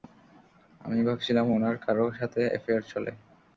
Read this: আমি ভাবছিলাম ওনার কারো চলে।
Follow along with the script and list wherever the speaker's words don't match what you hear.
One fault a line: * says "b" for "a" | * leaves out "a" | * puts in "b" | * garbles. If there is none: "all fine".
* puts in "সাথে অ্যাফেয়ার"